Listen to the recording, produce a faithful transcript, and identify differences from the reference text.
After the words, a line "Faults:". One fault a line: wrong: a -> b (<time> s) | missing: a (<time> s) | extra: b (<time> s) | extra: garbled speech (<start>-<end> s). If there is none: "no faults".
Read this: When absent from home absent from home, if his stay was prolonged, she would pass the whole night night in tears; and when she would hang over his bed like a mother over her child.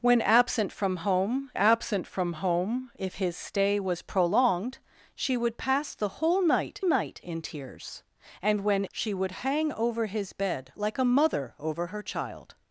When absent from home absent from home, if his stay was prolonged, she would pass the whole night night in tears; and when she would hang over his bed like a mother over her child.
Faults:
no faults